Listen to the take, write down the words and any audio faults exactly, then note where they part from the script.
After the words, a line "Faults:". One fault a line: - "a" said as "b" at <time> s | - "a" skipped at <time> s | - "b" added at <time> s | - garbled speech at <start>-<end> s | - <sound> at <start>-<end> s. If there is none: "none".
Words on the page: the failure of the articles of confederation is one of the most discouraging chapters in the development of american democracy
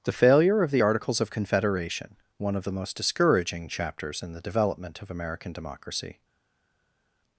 the failure of the articles of confederation one of the most discouraging chapters in the development of american democracy
Faults:
- "is" skipped at 2.2 s